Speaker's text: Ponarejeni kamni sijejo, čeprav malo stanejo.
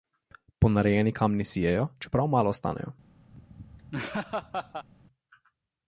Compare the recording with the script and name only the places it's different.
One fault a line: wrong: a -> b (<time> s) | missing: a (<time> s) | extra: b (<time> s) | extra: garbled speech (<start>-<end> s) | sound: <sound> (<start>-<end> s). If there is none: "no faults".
sound: laugh (3.3-4.9 s)